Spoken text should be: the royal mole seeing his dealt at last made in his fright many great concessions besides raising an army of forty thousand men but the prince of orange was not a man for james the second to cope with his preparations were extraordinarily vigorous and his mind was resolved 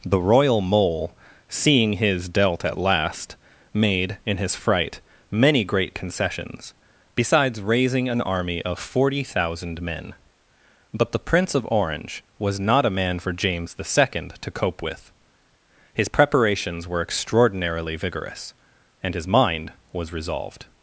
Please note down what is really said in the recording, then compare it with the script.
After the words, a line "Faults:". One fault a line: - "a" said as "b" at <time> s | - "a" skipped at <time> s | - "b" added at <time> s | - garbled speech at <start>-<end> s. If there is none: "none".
the royal mole seeing his dealt at last made in his fright many great concessions besides raising an army of forty thousand men but the prince of orange was not a man for james the second to cope with his preparations were extraordinarily vigorous and his mind was resolved
Faults:
none